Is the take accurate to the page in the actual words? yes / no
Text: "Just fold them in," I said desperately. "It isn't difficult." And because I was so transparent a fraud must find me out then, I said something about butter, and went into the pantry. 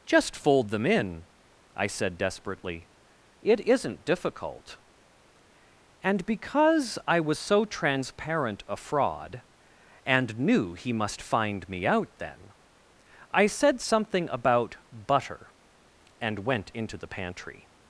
no